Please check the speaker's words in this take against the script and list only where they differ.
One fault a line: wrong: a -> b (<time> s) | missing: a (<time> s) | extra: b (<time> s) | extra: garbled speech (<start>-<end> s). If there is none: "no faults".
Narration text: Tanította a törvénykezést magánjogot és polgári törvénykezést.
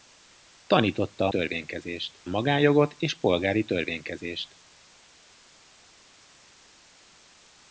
no faults